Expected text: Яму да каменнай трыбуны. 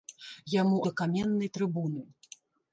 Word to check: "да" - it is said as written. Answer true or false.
true